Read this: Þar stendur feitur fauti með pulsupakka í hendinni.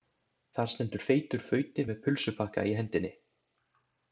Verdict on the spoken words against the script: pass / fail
pass